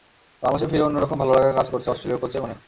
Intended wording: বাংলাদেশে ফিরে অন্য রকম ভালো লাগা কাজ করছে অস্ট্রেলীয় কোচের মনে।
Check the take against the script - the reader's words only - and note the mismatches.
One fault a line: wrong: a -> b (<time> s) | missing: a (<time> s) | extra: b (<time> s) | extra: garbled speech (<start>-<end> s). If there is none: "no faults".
no faults